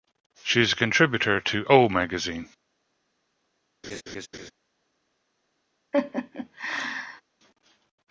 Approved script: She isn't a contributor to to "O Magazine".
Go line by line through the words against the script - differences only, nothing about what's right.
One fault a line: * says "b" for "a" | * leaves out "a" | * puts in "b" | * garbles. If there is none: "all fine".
* says "is" for "isn't"
* leaves out "to"